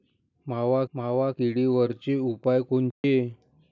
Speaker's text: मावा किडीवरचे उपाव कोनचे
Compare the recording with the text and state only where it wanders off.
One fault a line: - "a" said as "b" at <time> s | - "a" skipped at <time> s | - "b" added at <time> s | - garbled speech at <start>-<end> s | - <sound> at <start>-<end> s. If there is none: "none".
- "मावा" added at 0.9 s
- dropout at 2.9-3.0 s